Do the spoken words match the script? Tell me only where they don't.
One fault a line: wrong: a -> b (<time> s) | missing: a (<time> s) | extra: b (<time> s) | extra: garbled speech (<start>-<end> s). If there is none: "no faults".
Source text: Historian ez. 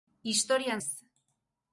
no faults